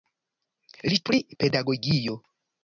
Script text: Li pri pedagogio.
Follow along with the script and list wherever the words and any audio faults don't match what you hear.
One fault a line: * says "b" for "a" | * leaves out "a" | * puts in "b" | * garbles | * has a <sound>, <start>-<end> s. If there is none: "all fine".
all fine